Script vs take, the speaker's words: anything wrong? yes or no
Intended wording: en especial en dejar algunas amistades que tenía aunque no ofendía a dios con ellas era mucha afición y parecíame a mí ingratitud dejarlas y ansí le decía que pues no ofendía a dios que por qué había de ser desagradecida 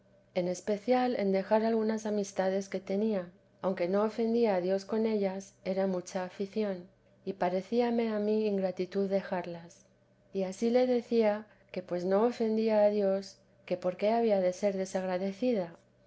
no